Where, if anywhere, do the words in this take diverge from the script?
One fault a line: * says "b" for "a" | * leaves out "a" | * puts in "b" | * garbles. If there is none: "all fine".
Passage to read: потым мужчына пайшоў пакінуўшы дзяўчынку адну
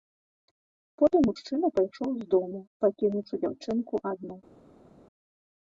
* puts in "з дому"